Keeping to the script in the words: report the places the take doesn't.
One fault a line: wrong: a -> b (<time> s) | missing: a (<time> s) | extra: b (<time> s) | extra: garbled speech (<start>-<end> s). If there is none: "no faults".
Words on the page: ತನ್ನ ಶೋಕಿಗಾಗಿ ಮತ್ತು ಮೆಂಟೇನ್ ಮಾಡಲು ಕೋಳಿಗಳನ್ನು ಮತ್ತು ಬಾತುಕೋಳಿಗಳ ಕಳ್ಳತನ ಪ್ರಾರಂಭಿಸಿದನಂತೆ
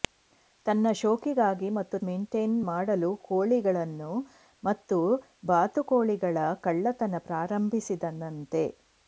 no faults